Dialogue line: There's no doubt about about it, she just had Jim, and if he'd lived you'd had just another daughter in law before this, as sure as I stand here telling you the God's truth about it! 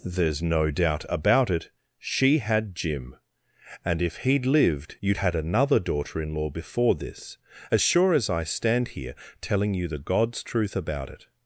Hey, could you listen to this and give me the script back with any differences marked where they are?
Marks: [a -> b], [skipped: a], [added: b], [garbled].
There's no doubt about [skipped: about] it, she [skipped: just] had Jim, and if he'd lived you'd had [skipped: just] another daughter in law before this, as sure as I stand here telling you the God's truth about it!